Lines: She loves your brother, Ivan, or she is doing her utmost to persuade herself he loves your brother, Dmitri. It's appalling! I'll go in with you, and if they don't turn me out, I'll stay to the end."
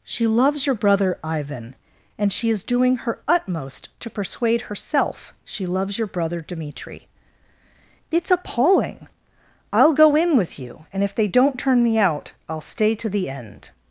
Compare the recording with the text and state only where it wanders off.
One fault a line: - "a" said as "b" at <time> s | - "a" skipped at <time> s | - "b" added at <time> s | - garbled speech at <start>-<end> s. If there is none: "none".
- "or" said as "and" at 2.2 s
- "he" said as "she" at 5.4 s